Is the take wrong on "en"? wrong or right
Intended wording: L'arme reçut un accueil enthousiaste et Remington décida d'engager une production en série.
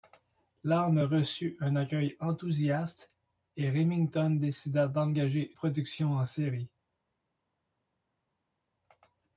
right